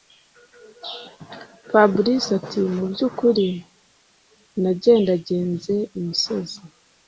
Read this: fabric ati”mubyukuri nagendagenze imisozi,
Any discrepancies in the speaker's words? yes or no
no